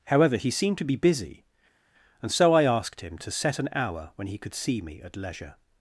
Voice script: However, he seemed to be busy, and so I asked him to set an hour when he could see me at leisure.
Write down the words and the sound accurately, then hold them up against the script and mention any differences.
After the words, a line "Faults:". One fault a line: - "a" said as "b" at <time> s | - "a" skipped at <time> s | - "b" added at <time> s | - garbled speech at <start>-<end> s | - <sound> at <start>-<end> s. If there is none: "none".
However, he seemed to be busy, and so I asked him to set an hour when he could see me at leisure.
Faults:
none